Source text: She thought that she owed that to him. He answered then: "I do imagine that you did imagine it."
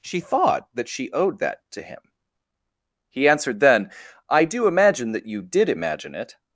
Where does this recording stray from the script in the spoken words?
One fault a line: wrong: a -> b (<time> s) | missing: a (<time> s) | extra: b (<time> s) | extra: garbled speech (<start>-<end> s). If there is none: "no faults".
no faults